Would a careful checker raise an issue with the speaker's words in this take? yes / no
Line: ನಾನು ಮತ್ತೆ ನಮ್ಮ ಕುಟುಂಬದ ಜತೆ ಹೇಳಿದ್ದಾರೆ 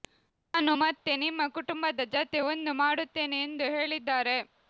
yes